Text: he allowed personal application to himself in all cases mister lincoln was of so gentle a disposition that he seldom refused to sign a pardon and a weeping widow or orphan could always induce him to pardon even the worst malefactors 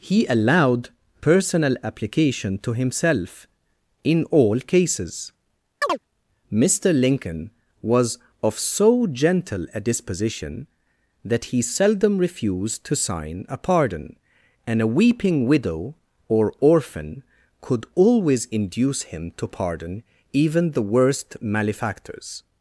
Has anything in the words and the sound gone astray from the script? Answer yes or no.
yes